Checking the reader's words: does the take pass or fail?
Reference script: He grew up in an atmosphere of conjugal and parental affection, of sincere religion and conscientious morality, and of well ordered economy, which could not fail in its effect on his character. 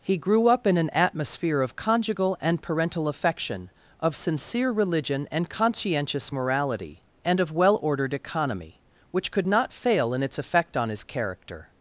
pass